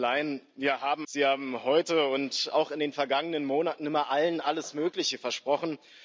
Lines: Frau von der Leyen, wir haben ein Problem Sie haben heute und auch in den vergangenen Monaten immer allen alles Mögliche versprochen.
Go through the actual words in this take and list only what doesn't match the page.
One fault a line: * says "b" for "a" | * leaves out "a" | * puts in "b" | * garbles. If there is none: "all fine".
* leaves out "ein Problem"